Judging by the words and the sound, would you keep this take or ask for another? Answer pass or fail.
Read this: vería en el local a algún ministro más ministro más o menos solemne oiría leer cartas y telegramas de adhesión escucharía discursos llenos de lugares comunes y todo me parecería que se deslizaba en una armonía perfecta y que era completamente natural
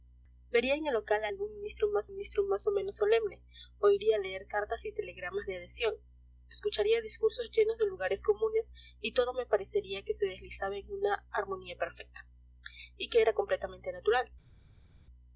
pass